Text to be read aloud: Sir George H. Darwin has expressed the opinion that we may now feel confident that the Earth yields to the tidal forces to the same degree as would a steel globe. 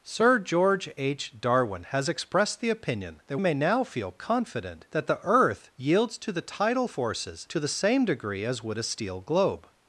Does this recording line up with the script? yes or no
no